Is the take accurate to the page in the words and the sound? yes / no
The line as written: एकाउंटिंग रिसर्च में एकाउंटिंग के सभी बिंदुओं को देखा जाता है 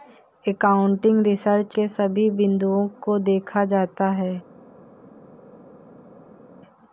no